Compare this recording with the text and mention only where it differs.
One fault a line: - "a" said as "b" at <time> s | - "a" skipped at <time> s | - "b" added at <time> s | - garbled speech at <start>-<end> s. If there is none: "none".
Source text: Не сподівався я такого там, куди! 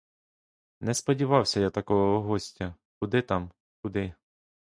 - "гостя куди" added at 2.2 s